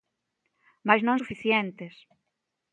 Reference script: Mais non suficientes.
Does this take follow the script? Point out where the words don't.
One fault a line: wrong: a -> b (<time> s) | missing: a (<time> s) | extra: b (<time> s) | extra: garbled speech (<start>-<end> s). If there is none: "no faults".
no faults